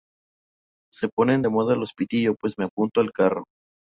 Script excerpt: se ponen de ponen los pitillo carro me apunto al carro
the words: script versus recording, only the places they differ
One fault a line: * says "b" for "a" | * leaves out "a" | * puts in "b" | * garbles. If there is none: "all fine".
* says "moda" for "ponen"
* says "pues" for "carro"